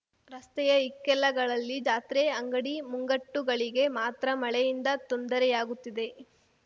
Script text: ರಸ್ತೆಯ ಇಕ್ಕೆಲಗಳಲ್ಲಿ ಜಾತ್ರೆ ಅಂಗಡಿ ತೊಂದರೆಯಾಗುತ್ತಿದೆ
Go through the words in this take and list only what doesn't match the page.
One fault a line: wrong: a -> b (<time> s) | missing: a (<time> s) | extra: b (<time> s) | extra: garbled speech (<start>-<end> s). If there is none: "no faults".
extra: ಮುಂಗಟ್ಟುಗಳಿಗೆ ಮಾತ್ರ ಮಳೆಯಿಂದ (2.9 s)